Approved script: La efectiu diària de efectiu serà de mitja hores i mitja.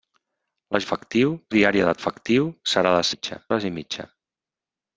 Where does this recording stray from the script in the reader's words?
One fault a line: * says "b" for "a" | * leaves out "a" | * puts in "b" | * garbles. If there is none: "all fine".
all fine